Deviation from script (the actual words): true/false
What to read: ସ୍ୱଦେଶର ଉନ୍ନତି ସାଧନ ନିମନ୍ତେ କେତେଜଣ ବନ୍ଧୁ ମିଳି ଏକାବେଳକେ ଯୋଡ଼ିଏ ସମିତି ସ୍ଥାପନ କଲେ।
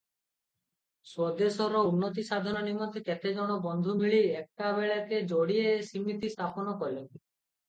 false